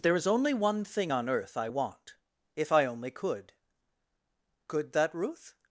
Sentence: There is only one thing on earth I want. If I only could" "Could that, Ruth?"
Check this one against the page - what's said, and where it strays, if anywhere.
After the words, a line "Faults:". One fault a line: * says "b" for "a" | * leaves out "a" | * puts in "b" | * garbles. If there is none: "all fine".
There is only one thing on earth I want. If I only could" "Could that, Ruth?"
Faults:
all fine